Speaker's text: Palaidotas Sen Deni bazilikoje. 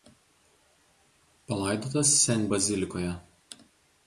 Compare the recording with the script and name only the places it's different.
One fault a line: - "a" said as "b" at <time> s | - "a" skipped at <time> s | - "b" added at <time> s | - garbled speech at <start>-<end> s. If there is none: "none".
- "Deni" skipped at 2.5 s